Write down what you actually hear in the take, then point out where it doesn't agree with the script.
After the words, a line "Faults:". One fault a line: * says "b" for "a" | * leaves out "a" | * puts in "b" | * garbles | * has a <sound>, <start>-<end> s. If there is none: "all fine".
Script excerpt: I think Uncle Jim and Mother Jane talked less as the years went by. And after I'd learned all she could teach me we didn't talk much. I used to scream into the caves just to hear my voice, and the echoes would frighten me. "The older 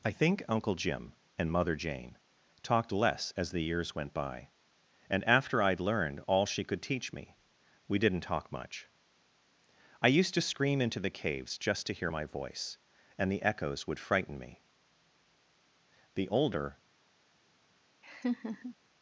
I think Uncle Jim and Mother Jane talked less as the years went by. And after I'd learned all she could teach me we didn't talk much. I used to scream into the caves just to hear my voice, and the echoes would frighten me. "The older
Faults:
* has a laugh, 18.0-18.7 s